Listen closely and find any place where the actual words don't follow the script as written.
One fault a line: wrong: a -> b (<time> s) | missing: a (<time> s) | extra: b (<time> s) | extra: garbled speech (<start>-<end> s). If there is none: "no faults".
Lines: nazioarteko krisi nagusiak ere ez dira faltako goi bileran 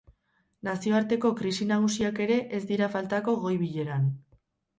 no faults